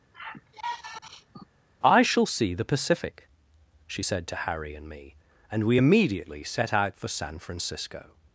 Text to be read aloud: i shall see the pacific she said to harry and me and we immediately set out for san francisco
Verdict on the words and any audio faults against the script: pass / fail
fail